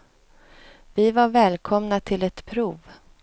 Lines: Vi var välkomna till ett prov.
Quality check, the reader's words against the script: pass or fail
pass